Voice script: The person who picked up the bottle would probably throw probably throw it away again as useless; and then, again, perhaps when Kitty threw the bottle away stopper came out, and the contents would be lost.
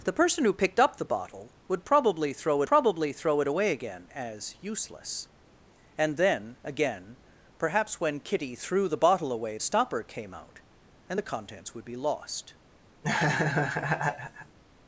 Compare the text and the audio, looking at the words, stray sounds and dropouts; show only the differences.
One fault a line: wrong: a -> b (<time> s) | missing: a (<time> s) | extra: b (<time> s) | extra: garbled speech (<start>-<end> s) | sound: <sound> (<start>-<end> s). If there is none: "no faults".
sound: laugh (13.0-14.6 s)